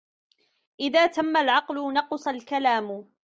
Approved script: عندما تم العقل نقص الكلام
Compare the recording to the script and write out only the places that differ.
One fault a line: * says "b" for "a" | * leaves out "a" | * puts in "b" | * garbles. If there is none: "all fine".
* says "إذا" for "عندما"